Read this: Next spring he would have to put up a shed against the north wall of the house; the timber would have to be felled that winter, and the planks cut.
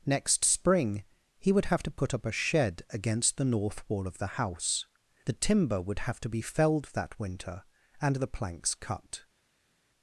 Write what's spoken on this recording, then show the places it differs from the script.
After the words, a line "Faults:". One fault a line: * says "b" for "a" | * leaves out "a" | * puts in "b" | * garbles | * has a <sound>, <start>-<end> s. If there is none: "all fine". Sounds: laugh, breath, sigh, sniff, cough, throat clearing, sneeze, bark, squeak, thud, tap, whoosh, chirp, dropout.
Next spring he would have to put up a shed against the north wall of the house; the timber would have to be felled that winter, and the planks cut.
Faults:
all fine